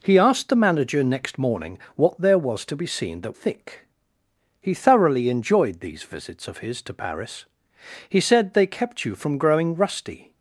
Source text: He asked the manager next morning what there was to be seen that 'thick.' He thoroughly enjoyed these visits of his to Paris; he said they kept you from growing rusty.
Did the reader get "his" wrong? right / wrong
right